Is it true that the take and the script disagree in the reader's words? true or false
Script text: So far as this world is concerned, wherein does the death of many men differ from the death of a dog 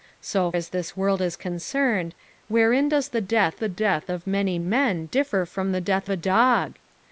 true